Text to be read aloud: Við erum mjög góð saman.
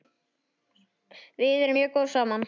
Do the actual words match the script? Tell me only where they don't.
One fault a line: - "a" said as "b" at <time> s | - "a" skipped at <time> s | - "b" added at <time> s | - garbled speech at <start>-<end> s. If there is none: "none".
none